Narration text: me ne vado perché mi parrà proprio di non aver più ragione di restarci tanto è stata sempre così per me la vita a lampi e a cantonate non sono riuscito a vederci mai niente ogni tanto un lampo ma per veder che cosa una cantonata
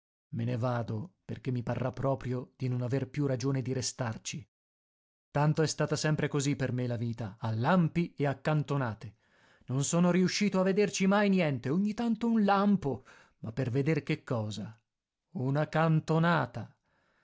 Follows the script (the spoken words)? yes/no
yes